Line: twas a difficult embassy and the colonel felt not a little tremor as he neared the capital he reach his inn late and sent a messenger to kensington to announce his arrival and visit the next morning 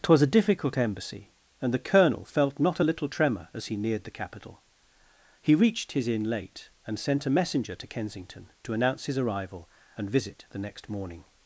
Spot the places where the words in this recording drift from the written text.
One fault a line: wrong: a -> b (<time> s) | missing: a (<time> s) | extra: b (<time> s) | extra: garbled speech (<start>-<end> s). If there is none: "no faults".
wrong: reach -> reached (5.5 s)